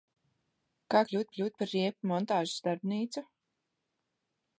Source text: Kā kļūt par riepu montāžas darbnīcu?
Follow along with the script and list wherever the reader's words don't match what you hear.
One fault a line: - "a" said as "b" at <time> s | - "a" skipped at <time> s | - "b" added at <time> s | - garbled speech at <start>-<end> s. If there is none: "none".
- "kļūt" added at 1.3 s